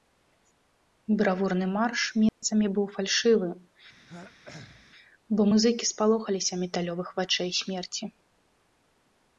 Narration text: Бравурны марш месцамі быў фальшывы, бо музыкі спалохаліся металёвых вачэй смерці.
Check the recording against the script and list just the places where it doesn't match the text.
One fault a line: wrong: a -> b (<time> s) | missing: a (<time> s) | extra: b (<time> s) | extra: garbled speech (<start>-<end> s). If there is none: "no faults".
no faults